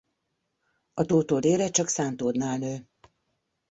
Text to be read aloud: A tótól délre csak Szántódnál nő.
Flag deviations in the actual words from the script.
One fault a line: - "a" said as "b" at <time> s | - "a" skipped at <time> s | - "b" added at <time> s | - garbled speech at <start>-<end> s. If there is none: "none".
none